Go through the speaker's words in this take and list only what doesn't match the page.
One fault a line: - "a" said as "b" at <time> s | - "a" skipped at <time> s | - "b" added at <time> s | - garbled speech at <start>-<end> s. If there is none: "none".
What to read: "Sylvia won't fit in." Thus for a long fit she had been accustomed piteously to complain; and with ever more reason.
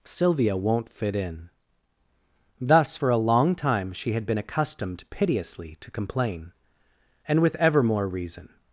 - "fit" said as "time" at 3.5 s